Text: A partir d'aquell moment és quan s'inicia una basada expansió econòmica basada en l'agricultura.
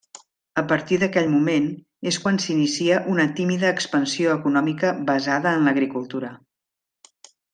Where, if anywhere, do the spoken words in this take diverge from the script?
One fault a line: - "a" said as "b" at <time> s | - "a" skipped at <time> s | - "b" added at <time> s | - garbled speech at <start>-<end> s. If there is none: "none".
- "basada" said as "tímida" at 3.4 s